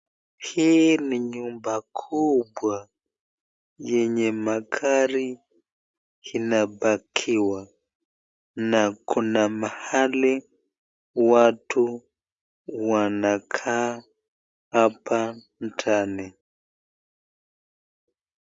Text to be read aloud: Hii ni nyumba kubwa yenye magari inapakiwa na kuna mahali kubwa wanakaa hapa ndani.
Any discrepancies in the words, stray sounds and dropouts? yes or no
yes